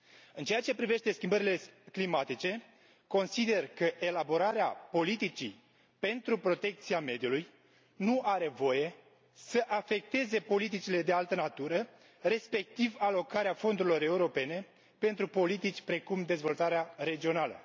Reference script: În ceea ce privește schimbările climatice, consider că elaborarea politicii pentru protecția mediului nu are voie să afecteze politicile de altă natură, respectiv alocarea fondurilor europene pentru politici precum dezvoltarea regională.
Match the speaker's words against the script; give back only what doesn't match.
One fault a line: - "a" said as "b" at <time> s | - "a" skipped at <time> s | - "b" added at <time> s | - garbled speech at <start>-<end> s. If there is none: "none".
none